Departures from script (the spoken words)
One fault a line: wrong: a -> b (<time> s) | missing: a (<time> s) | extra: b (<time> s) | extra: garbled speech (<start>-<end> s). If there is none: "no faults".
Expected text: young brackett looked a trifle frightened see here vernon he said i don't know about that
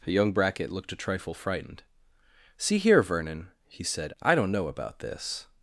wrong: that -> this (5.0 s)